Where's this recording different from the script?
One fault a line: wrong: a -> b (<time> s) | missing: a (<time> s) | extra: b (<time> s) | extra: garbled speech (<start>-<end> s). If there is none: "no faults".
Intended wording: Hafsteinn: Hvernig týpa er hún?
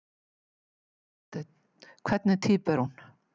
no faults